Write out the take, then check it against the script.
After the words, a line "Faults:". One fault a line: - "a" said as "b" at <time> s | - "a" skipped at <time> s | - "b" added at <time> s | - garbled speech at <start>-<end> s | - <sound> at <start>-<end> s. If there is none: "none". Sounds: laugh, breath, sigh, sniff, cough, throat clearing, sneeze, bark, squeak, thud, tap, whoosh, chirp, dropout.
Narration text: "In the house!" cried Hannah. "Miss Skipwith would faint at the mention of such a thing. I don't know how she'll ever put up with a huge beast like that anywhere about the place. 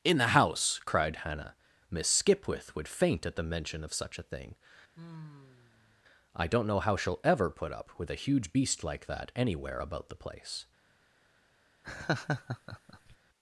"In the house!" cried Hannah. "Miss Skipwith would faint at the mention of such a thing. I don't know how she'll ever put up with a huge beast like that anywhere about the place.
Faults:
- sigh at 4.9-6.0 s
- laugh at 11.8-13.2 s